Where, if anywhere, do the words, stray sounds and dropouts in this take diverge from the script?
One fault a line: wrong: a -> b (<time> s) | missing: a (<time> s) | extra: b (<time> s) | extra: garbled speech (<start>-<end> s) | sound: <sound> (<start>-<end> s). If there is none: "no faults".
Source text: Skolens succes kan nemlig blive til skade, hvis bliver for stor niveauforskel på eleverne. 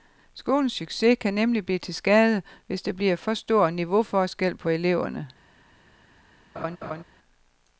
extra: der (2.8 s)
sound: laugh (6.5-7.0 s)